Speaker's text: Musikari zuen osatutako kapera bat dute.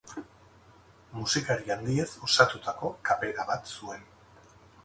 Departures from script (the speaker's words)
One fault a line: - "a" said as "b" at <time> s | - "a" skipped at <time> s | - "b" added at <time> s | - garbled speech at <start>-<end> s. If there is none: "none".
- "zuen" said as "handiez" at 1.8 s
- "dute" said as "zuen" at 3.8 s